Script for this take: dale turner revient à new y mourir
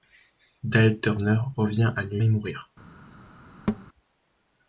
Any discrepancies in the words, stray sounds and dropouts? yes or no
yes